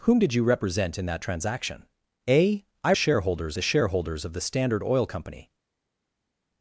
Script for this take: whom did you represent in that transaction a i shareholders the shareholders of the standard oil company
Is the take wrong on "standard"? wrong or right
right